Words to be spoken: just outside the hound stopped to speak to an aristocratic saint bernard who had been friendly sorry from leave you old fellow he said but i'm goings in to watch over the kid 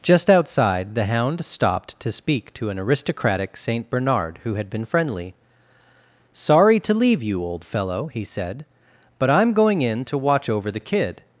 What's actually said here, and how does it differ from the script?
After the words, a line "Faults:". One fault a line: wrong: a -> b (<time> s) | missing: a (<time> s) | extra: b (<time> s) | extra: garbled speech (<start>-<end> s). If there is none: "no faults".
just outside the hound stopped to speak to an aristocratic saint bernard who had been friendly sorry to leave you old fellow he said but i'm going in to watch over the kid
Faults:
wrong: from -> to (6.8 s)
wrong: goings -> going (9.5 s)